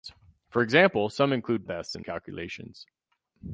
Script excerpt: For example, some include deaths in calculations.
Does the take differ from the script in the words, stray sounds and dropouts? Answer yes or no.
no